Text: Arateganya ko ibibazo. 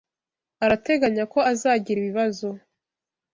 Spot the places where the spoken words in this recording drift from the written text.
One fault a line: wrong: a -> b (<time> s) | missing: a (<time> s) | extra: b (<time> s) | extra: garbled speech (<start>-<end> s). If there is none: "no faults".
extra: azagira (1.5 s)